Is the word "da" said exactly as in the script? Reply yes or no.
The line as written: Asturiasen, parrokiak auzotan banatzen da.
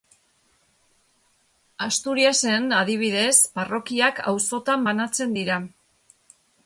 no